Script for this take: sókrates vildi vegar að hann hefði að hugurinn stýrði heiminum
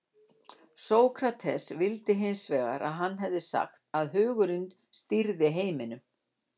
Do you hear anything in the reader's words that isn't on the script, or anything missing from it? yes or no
yes